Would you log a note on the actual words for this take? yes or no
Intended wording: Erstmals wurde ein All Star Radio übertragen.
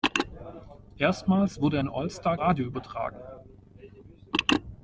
no